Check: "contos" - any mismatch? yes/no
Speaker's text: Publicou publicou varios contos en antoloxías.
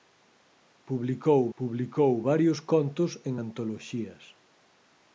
no